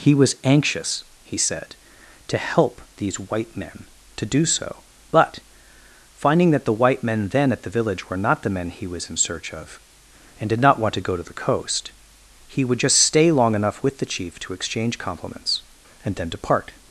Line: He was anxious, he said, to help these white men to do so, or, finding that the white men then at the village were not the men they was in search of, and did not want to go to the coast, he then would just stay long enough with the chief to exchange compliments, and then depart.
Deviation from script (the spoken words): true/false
true